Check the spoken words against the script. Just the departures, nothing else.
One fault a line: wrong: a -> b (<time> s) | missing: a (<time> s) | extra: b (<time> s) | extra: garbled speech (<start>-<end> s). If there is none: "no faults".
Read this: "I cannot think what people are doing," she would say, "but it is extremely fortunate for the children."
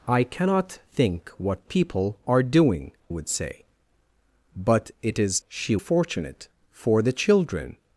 missing: she (2.9 s)
wrong: extremely -> she (5.5 s)